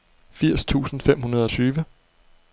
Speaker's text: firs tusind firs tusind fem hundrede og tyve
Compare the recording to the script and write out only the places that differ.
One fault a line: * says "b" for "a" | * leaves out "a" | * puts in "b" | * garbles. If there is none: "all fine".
* leaves out "firs tusind"